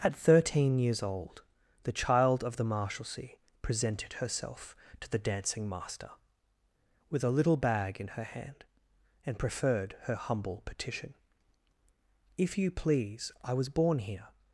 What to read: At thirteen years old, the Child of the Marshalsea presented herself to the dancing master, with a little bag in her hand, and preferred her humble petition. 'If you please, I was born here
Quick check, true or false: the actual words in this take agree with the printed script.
true